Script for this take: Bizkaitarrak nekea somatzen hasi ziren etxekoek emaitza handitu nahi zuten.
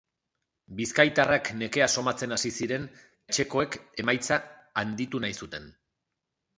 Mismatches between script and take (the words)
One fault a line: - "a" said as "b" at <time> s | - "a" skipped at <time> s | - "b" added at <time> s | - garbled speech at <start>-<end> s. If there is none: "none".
none